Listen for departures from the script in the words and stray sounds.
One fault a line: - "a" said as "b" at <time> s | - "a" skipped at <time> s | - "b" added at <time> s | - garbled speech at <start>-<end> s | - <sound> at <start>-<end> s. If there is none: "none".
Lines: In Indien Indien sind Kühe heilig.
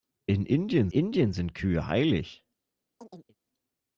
- chirp at 3.0-3.4 s